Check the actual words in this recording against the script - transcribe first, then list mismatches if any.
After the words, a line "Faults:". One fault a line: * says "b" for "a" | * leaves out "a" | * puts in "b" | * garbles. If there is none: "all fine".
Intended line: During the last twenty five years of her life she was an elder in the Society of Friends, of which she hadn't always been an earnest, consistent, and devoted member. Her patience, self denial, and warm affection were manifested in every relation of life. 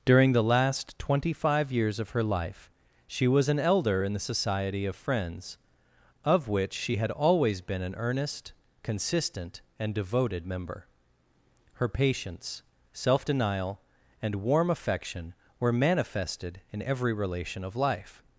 During the last twenty five years of her life she was an elder in the Society of Friends, of which she had always been an earnest, consistent, and devoted member. Her patience, self denial, and warm affection were manifested in every relation of life.
Faults:
* says "had" for "hadn't"